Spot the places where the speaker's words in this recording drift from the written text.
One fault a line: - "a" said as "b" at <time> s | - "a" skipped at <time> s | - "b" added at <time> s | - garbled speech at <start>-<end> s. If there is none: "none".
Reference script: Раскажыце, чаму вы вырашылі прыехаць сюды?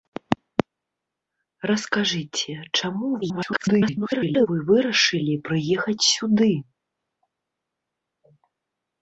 - garbled speech at 3.2-4.5 s